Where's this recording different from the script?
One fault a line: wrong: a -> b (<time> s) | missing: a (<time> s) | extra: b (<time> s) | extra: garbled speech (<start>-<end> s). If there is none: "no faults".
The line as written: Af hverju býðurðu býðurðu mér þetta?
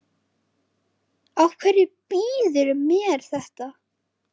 missing: býðurðu (2.8 s)